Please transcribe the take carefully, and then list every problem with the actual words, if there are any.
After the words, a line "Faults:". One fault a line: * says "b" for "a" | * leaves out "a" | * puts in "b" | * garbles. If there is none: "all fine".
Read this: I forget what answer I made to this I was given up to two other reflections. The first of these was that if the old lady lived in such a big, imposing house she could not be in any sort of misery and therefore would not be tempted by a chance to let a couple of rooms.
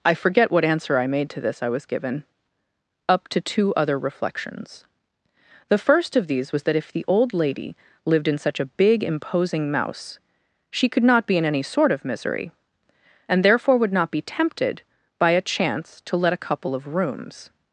I forget what answer I made to this I was given up to two other reflections. The first of these was that if the old lady lived in such a big, imposing mouse she could not be in any sort of misery and therefore would not be tempted by a chance to let a couple of rooms.
Faults:
* says "mouse" for "house"